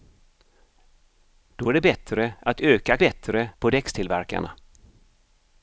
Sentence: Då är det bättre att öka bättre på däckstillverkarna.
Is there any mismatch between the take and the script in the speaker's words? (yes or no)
no